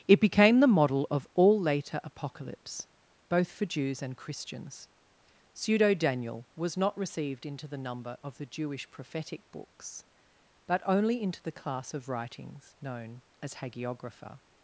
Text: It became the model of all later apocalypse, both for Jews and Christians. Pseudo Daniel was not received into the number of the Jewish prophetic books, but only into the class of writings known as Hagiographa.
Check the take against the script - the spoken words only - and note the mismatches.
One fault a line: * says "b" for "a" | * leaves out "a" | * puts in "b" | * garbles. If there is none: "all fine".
all fine